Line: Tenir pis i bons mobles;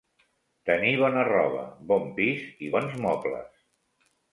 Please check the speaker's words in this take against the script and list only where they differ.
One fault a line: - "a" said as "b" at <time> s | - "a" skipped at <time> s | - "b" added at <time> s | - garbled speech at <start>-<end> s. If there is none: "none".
- "bona roba bon" added at 1.0 s